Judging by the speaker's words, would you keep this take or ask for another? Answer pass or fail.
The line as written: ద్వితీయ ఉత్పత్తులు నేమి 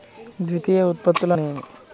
pass